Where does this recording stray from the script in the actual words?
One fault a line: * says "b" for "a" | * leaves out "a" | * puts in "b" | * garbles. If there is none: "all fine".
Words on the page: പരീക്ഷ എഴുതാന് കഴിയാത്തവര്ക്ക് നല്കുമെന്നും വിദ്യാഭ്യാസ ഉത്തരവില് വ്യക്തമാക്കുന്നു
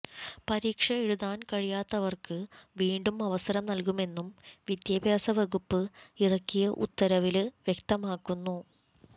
* puts in "വീണ്ടും അവസരം"
* puts in "വകുപ്പ് ഇറക്കിയ"